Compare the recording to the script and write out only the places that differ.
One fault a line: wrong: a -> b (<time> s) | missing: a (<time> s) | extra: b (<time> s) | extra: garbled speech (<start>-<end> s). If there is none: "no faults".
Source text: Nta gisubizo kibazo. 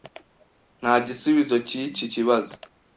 extra: cyiki (1.7 s)